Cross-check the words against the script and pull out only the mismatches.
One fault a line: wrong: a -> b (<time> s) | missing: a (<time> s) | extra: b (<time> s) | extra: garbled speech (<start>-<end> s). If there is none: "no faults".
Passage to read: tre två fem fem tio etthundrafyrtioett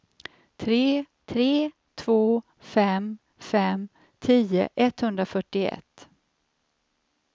extra: tre (1.3 s)